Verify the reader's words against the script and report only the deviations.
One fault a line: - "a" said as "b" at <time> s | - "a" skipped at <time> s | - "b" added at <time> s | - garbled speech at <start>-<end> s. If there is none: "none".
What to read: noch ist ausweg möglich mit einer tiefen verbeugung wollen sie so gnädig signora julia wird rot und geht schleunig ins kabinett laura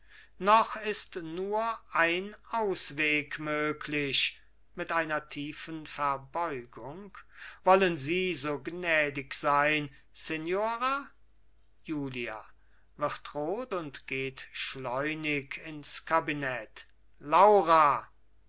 - "nur ein" added at 1.2 s
- "sein" added at 9.3 s